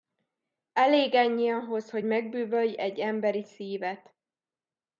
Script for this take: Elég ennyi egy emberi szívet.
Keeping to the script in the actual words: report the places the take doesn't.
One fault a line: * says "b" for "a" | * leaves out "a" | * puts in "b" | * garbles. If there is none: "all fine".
* puts in "ahhoz hogy megbűvölj"